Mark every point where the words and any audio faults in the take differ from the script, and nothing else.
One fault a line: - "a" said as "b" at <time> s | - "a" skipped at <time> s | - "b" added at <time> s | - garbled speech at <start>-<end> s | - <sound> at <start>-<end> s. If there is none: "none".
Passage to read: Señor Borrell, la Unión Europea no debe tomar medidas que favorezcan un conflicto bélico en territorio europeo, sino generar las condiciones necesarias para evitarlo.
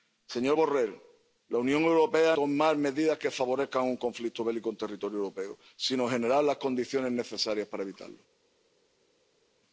- "no debe" skipped at 2.4 s